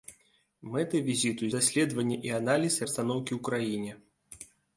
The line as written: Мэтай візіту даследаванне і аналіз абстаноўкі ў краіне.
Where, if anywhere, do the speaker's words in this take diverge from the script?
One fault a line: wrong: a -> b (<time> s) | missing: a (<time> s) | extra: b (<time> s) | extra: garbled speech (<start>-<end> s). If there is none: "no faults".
no faults